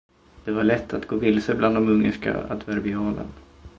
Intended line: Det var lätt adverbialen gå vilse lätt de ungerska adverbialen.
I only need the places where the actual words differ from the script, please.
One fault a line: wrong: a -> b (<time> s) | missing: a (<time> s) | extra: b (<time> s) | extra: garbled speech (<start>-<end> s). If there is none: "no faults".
wrong: adverbialen -> att (0.9 s)
wrong: lätt -> bland (1.6 s)